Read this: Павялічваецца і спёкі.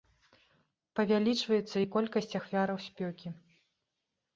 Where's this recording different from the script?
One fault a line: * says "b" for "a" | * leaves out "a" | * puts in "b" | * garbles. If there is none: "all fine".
* puts in "колькасць ахвяраў"